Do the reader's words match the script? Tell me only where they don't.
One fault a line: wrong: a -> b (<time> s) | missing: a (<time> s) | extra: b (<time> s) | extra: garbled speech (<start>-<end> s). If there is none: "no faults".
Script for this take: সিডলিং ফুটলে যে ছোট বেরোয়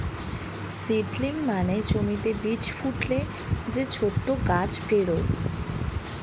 extra: মানে জমিতে বীজ (1.4 s)
extra: গাছ (4.5 s)